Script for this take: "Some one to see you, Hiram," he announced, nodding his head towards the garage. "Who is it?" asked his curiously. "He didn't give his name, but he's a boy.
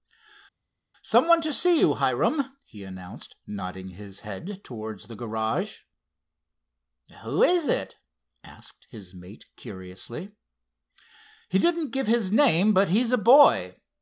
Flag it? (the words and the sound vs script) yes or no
yes